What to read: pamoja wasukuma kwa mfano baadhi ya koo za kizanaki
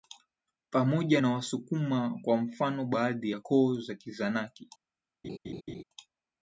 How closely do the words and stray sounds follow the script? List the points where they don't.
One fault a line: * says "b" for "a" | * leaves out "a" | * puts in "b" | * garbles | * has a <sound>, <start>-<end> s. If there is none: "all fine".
* puts in "na"
* has a laugh, 5.2-5.8 s